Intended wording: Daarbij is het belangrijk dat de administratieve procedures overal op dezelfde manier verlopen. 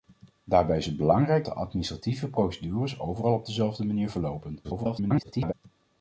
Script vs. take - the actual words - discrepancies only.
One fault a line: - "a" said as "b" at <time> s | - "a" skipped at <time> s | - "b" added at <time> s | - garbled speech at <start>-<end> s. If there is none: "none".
- "dat" skipped at 1.4 s
- garbled speech at 4.6-5.5 s